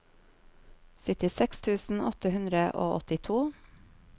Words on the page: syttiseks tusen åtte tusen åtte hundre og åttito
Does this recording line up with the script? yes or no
no